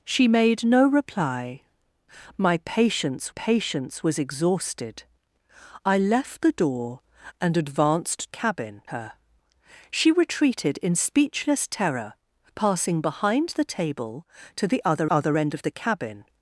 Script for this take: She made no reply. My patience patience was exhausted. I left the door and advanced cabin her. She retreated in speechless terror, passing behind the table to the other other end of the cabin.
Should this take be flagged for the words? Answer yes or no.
no